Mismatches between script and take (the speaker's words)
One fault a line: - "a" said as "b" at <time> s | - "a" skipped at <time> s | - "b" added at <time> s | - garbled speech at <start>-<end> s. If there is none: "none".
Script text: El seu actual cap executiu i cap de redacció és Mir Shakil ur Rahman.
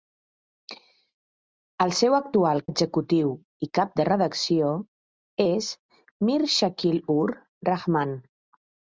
- "cap" skipped at 2.6 s